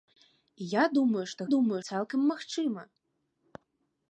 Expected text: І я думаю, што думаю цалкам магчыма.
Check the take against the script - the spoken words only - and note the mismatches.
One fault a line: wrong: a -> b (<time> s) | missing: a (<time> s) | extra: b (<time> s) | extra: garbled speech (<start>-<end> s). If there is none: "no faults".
no faults